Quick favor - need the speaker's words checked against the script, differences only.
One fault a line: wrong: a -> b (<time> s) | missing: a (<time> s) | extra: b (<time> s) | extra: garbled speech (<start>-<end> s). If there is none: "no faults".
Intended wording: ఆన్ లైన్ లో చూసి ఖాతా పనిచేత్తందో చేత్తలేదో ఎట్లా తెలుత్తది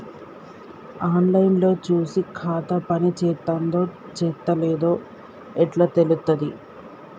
no faults